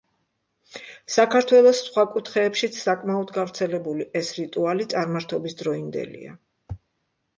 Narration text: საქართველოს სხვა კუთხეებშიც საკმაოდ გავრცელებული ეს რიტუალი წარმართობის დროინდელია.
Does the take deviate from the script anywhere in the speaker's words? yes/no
no